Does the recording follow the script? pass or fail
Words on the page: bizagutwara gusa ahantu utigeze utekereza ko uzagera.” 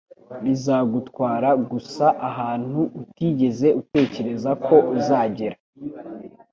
pass